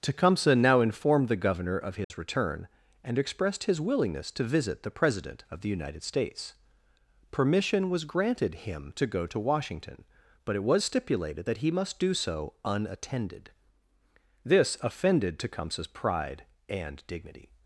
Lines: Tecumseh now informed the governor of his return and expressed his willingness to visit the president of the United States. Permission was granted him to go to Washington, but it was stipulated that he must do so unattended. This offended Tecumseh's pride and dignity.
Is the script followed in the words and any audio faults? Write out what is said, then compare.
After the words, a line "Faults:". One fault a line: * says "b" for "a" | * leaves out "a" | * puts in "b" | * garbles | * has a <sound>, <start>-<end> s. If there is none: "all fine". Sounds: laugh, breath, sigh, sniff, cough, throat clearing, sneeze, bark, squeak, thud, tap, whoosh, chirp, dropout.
Tecumseh now informed the governor of his return and expressed his willingness to visit the president of the United States. Permission was granted him to go to Washington, but it was stipulated that he must do so unattended. This offended Tecumseh's pride and dignity.
Faults:
* has a dropout, 2.0-2.1 s